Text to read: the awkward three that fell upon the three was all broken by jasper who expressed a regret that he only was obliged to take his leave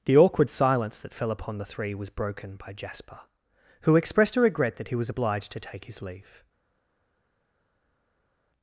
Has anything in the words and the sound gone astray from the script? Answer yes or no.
yes